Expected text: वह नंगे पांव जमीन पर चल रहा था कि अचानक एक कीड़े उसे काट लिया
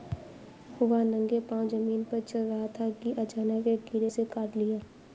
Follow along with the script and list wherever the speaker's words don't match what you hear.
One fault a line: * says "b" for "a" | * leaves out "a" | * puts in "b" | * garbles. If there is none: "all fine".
all fine